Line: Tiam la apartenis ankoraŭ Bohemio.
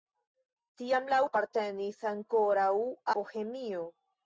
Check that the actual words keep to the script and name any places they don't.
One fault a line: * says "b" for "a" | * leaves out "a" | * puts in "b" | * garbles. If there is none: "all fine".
all fine